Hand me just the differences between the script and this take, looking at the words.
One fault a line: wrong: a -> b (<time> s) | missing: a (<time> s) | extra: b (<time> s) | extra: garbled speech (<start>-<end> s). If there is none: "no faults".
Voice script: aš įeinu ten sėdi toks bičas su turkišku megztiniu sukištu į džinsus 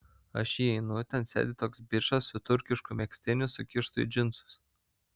no faults